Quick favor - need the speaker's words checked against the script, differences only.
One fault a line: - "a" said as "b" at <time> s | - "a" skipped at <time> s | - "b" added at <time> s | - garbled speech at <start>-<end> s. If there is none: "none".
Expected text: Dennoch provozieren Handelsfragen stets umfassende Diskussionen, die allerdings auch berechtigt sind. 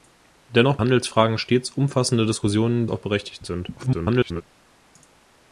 - "provozieren" skipped at 0.8 s
- "die allerdings" skipped at 2.9 s
- garbled speech at 3.8-4.4 s